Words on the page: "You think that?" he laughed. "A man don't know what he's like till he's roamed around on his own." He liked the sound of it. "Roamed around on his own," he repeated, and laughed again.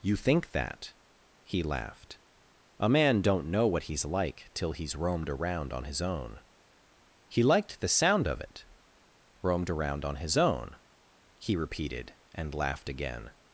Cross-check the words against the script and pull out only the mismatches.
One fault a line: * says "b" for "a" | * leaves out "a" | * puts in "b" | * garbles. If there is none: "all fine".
all fine